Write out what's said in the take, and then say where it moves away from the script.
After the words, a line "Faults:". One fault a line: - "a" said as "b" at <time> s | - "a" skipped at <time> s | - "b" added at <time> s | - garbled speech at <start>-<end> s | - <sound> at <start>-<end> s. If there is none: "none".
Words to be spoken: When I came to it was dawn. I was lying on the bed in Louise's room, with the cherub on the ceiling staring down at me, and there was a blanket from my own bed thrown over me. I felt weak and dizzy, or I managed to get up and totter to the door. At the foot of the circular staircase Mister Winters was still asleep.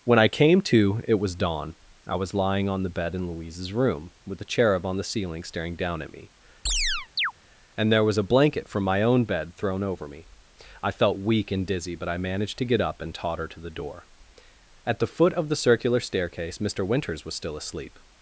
When I came to it was dawn. I was lying on the bed in Louise's room, with the cherub on the ceiling staring down at me, and there was a blanket from my own bed thrown over me. I felt weak and dizzy, but I managed to get up and totter to the door. At the foot of the circular staircase Mister Winters was still asleep.
Faults:
- chirp at 6.7-7.3 s
- "or" said as "but" at 12.0 s